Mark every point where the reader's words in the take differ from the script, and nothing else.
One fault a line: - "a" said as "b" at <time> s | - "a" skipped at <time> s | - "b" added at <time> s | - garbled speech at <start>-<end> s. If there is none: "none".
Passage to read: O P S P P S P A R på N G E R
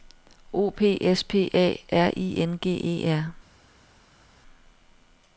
- "P S P" skipped at 1.5 s
- "på" said as "I" at 2.2 s